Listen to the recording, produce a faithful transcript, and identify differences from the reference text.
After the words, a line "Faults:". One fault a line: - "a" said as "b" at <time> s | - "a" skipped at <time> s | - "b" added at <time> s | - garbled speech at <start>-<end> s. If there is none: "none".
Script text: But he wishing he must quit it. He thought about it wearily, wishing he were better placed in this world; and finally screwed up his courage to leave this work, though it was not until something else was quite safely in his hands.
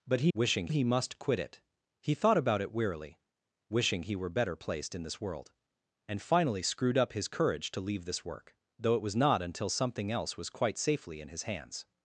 But he wishing he must quit it. He thought about it wearily, wishing he were better placed in this world; and finally screwed up his courage to leave this work, though it was not until something else was quite safely in his hands.
Faults:
none